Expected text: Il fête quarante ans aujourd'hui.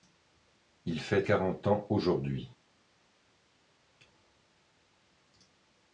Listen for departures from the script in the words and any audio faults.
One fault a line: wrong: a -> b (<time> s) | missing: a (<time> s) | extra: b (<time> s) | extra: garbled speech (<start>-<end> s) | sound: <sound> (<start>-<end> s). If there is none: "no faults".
no faults